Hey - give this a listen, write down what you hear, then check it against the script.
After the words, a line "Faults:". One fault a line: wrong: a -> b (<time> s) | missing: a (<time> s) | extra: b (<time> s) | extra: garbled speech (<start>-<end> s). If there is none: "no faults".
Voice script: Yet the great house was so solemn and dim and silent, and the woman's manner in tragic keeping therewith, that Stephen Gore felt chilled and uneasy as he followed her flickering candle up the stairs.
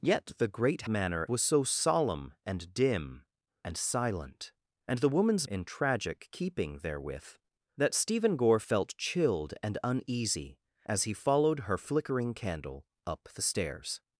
Yet the great manner was so solemn and dim and silent, and the woman's in tragic keeping therewith, that Stephen Gore felt chilled and uneasy as he followed her flickering candle up the stairs.
Faults:
wrong: house -> manner (0.9 s)
missing: manner (5.5 s)